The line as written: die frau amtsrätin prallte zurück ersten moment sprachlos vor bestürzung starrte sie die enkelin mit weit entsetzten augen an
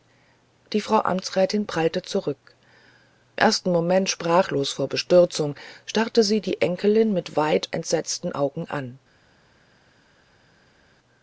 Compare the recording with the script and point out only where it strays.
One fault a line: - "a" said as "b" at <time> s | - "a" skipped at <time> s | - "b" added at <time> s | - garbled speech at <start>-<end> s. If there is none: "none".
none